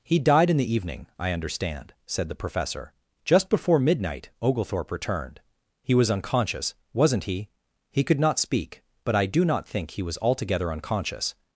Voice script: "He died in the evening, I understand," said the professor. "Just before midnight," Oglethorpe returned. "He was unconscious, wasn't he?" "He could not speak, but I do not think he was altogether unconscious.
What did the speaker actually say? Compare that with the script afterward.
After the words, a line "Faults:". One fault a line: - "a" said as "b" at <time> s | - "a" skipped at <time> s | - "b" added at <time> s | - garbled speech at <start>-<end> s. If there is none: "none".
"He died in the evening, I understand," said the professor. "Just before midnight," Oglethorpe returned. "He was unconscious, wasn't he?" "He could not speak, but I do not think he was altogether unconscious.
Faults:
none